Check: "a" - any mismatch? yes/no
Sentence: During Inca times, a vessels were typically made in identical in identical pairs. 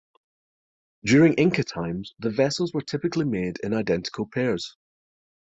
yes